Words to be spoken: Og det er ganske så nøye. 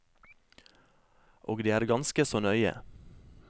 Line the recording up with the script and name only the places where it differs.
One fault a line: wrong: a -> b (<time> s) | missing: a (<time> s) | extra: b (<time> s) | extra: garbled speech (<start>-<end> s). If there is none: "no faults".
no faults